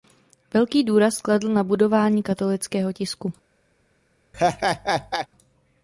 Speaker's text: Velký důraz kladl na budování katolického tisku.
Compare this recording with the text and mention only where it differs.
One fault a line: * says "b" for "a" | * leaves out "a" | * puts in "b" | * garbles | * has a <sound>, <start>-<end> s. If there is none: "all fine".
* has a laugh, 4.3-5.3 s